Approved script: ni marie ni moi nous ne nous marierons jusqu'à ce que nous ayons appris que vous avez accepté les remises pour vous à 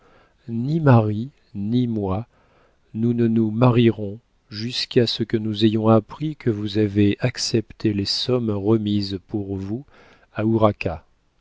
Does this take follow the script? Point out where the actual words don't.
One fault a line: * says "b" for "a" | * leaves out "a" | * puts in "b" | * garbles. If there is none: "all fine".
* puts in "sommes"